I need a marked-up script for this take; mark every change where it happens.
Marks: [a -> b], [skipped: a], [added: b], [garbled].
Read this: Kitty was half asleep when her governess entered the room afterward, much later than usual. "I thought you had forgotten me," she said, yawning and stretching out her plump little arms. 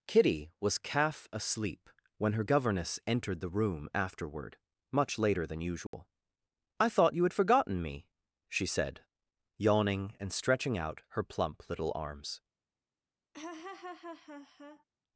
Kitty was [half -> calf] asleep when her governess entered the room afterward, much later than usual. "I thought you had forgotten me," she said, yawning and stretching out her plump little arms.